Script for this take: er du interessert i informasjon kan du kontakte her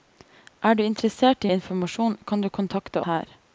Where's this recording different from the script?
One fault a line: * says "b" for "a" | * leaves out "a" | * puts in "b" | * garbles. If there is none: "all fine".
all fine